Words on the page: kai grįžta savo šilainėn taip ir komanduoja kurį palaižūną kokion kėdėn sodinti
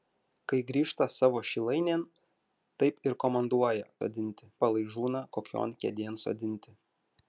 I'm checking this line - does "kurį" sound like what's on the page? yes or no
no